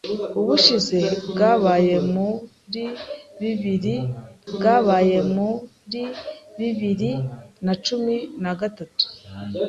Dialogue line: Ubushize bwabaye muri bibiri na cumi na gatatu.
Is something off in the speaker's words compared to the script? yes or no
yes